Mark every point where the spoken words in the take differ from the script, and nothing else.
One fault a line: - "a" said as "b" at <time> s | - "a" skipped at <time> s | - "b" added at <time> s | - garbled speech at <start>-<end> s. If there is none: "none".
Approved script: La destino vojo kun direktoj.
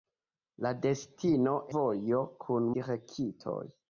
none